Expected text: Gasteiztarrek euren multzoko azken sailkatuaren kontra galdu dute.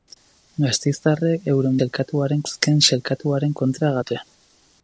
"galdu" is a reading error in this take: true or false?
true